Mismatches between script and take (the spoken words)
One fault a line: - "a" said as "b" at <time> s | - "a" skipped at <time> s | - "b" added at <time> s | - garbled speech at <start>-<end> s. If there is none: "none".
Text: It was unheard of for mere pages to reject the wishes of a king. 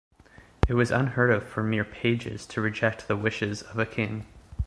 none